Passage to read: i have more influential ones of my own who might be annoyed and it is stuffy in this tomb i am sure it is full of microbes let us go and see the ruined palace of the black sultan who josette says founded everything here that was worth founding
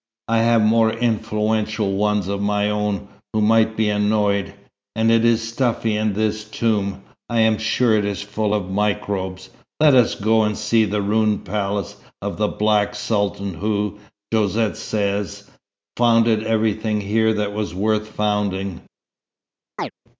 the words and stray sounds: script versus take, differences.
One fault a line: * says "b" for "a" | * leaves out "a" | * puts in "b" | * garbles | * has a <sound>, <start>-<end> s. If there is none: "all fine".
* has a chirp, 19.8-19.9 s